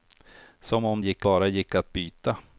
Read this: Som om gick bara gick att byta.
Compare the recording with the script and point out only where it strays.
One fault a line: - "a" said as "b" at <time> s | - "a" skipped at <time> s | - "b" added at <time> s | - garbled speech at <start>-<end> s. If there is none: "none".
none